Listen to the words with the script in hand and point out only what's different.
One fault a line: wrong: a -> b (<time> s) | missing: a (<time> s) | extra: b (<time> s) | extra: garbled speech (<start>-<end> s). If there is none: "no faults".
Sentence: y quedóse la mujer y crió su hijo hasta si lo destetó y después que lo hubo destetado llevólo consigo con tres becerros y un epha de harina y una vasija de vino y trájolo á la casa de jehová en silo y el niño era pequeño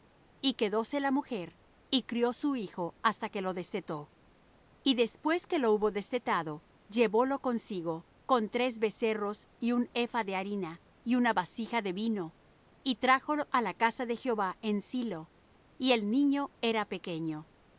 wrong: si -> que (3.3 s)